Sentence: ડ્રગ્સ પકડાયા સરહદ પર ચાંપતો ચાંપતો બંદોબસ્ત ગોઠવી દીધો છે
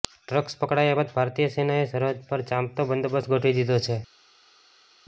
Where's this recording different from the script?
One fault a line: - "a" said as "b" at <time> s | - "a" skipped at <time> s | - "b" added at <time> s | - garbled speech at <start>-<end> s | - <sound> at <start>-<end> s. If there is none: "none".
- "બાદ ભારતીય સેનાએ" added at 0.9 s
- "ચાંપતો" skipped at 2.9 s